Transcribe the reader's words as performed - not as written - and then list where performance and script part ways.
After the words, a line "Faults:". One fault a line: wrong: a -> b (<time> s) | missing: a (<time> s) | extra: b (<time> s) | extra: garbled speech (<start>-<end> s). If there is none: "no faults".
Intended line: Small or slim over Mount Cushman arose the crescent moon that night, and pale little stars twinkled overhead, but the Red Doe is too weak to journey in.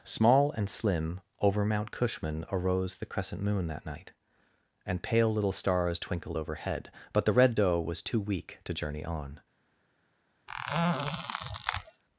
Small and slim over Mount Cushman arose the crescent moon that night, and pale little stars twinkled overhead, but the Red Doe was too weak to journey on.
Faults:
wrong: or -> and (0.5 s)
wrong: is -> was (7.8 s)
wrong: in -> on (9.0 s)